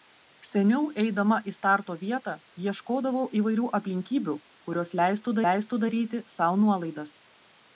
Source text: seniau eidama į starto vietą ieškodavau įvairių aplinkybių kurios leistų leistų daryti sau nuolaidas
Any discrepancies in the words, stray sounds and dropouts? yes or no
no